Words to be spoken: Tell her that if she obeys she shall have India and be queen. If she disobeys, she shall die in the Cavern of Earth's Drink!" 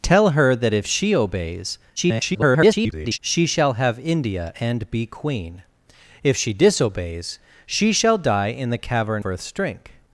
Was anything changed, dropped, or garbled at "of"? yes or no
yes